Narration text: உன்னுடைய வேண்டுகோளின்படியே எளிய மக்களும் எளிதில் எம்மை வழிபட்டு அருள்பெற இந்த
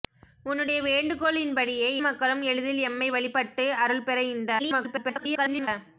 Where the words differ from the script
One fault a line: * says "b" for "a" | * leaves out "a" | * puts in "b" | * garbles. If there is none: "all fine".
* leaves out "எளிய"
* garbles